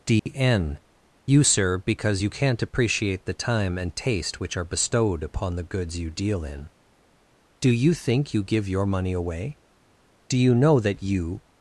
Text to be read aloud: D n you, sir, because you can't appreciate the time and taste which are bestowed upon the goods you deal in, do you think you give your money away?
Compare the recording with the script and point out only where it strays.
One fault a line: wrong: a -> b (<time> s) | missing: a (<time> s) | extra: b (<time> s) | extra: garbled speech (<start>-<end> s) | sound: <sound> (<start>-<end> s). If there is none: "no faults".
sound: dropout (0.2-0.3 s)
extra: Do you know that you (10.3 s)